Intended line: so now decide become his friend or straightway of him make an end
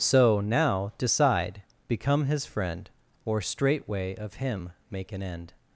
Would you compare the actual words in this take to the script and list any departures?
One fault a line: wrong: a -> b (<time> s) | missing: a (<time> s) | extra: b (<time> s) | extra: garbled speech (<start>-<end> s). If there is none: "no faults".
no faults